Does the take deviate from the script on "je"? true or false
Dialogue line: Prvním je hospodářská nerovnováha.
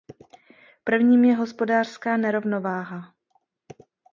false